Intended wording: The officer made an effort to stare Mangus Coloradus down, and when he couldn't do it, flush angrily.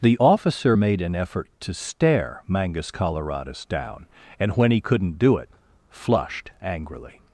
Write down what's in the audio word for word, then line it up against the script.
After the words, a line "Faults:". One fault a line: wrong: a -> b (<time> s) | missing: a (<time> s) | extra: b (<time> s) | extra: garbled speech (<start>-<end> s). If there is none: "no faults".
The officer made an effort to stare Mangus Coloradus down, and when he couldn't do it, flushed angrily.
Faults:
wrong: flush -> flushed (5.9 s)